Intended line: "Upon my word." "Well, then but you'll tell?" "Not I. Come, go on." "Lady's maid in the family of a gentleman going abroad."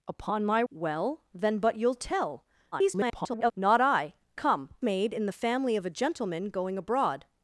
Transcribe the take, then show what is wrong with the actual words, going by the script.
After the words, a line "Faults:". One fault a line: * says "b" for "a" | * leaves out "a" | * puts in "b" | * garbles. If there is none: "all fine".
"Upon my." "Well, then but you'll tell?" [garbled] "Not I. Come, maid in the family of a gentleman going abroad."
Faults:
* leaves out "word"
* garbles
* leaves out "go on Lady's"